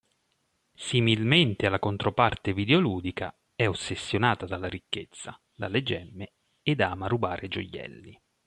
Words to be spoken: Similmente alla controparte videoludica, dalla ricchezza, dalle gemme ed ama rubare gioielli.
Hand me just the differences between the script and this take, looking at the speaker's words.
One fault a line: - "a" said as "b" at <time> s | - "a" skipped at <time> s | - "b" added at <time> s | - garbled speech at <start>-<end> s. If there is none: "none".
- "è ossessionata" added at 3.5 s